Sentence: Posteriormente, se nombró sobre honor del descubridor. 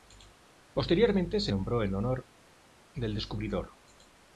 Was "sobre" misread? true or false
true